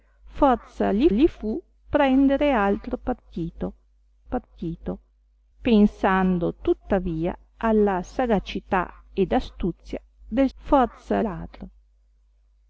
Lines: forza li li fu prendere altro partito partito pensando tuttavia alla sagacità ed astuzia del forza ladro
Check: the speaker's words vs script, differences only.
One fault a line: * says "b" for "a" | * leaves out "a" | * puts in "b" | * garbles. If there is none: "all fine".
all fine